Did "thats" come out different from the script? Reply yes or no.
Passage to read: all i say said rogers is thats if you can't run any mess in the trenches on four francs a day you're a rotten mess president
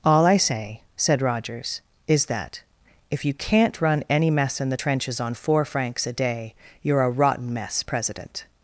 yes